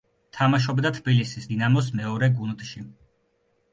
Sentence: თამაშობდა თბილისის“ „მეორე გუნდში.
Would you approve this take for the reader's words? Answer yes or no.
no